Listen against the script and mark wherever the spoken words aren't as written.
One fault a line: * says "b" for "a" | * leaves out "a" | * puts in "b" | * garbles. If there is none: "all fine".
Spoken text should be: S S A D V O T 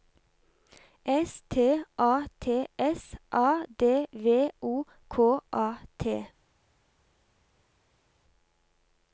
* puts in "T A T"
* puts in "K A"